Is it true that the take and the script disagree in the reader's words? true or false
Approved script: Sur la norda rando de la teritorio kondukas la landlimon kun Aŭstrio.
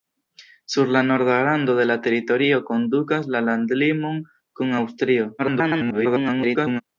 true